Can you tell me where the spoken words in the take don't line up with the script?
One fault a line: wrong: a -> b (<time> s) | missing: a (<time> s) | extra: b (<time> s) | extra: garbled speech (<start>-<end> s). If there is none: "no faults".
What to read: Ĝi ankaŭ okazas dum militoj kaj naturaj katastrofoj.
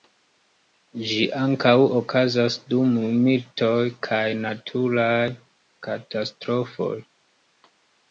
no faults